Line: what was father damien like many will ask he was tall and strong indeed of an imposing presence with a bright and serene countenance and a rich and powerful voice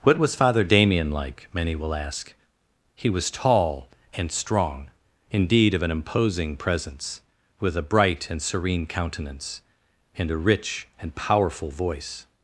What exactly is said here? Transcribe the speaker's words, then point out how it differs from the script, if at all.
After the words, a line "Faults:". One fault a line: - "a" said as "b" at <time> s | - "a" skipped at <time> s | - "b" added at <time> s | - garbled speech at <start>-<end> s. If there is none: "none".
what was father damien like many will ask he was tall and strong indeed of an imposing presence with a bright and serene countenance and a rich and powerful voice
Faults:
none